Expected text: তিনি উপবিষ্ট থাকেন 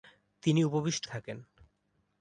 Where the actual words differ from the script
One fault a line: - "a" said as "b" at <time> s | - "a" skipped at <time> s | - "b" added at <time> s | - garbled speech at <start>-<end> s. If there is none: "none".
none